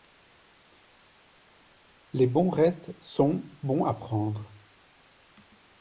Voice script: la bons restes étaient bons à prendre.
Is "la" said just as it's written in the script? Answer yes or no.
no